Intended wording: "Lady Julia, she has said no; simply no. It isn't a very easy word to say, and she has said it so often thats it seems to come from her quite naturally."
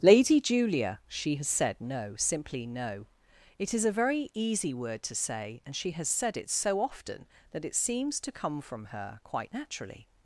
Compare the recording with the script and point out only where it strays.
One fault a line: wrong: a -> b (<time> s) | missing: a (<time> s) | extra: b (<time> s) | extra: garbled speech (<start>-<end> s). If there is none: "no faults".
wrong: isn't -> is (3.7 s)
wrong: thats -> that (7.5 s)